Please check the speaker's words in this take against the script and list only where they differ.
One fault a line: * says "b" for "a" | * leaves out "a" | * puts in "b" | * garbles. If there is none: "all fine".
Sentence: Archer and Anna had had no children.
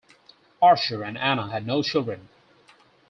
* leaves out "had"